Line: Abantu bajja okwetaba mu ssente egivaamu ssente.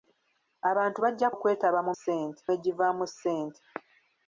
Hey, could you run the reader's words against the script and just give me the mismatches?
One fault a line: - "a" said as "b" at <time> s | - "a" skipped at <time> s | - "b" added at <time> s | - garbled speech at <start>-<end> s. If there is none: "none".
none